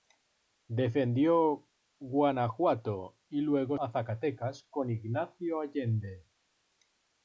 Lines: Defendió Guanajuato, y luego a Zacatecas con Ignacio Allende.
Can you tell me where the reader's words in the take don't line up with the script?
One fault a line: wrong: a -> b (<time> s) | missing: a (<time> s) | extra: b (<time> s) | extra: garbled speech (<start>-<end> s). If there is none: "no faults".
no faults